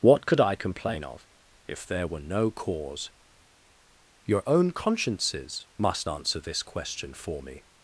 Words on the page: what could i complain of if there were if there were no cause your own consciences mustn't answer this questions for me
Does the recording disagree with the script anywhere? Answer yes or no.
yes